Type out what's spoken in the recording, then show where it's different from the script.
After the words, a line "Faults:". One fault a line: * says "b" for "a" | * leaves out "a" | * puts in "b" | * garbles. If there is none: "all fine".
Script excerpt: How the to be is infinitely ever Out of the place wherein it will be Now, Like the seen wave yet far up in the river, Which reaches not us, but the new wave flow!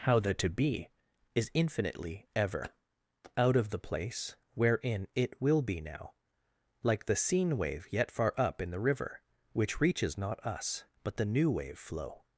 How the to be is infinitely ever Out of the place wherein it will be Now, Like the seen wave yet far up in the river, Which reaches not us, but the new wave flow!
Faults:
all fine